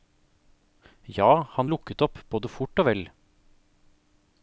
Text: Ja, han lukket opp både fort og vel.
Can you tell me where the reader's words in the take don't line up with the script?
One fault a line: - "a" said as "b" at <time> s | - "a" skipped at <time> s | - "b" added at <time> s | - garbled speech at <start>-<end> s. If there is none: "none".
none